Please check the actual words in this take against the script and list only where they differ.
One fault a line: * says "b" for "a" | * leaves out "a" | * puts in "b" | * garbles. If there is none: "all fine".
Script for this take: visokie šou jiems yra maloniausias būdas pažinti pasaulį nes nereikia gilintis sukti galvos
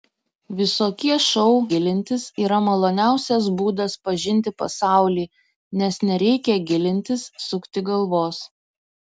* says "gilintis" for "jiems"